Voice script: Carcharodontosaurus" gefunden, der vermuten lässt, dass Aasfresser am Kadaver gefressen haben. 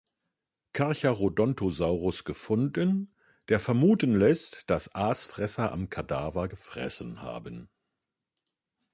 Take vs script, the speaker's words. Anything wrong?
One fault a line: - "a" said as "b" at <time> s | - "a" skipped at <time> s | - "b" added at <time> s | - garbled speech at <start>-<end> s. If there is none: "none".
none